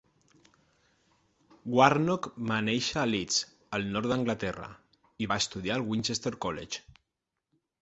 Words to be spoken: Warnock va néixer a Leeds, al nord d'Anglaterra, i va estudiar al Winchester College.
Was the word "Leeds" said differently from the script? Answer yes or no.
no